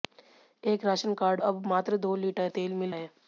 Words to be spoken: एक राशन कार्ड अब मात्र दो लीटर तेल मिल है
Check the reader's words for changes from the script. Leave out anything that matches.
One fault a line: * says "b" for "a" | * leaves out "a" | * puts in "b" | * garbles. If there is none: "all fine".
all fine